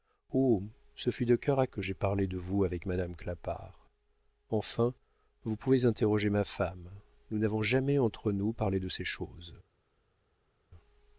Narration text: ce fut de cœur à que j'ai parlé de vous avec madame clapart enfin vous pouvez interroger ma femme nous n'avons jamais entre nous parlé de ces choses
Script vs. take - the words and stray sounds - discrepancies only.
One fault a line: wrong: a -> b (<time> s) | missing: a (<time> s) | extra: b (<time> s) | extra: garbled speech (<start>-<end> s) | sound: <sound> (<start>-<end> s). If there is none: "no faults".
no faults